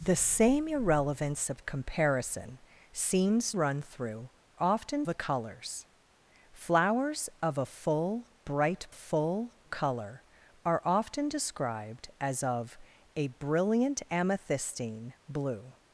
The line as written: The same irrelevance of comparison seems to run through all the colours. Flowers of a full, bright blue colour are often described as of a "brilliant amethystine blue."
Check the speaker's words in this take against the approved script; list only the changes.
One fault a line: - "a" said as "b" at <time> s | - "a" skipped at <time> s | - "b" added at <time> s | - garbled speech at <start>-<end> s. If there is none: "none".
- "to" skipped at 3.5 s
- "all" said as "often" at 4.6 s
- "blue" said as "full" at 8.9 s